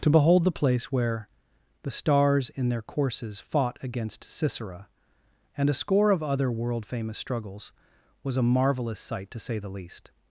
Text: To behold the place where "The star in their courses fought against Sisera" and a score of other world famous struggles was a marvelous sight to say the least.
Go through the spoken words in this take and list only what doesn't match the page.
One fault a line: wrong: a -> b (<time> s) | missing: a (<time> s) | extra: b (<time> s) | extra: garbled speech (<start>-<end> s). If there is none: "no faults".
wrong: star -> stars (1.9 s)